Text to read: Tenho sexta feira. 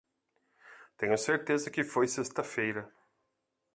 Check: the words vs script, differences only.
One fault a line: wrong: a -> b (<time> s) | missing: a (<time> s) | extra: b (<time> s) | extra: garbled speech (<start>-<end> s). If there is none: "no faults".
extra: certeza que foi (1.1 s)